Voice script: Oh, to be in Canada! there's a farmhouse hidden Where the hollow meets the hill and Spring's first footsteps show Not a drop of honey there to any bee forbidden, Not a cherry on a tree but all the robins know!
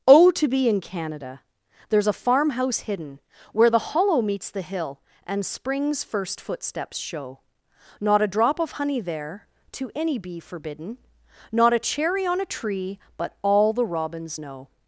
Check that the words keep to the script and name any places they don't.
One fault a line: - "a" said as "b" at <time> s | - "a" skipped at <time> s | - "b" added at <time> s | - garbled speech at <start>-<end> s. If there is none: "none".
none